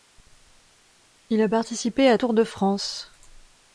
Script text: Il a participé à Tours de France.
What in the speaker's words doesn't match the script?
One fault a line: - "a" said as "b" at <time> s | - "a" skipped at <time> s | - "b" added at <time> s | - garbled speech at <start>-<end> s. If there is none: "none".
none